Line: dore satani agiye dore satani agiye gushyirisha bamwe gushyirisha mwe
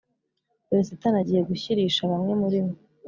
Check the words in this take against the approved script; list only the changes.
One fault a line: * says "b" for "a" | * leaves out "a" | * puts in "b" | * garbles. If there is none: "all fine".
* leaves out "dore satani agiye"
* says "muri" for "gushyirisha"